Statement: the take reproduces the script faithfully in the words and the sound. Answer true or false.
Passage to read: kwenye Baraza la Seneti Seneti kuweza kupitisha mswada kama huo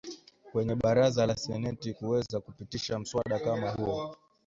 false